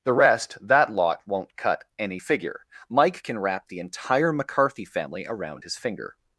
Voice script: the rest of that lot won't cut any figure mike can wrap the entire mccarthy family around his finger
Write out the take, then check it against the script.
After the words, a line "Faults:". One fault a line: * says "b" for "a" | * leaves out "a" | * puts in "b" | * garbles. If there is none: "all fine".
the rest that lot won't cut any figure mike can wrap the entire mccarthy family around his finger
Faults:
* leaves out "of"